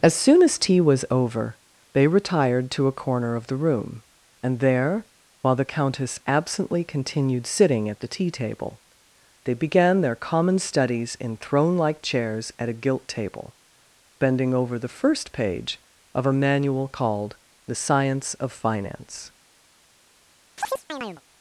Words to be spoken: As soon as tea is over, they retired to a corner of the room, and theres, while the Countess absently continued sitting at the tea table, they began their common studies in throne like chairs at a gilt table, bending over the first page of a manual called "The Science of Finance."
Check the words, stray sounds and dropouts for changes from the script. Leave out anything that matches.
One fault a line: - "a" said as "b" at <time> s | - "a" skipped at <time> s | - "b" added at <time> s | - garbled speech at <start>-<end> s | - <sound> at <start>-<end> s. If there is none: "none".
- "is" said as "was" at 0.8 s
- "theres" said as "there" at 4.6 s
- chirp at 20.6-21.2 s